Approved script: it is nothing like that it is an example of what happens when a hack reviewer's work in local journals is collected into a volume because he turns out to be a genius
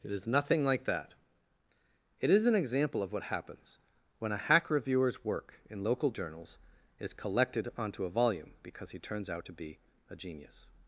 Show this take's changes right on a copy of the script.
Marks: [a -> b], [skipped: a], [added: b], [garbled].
it is nothing like that it is an example of what happens when a hack reviewer's work in local journals is collected [into -> onto] a volume because he turns out to be a genius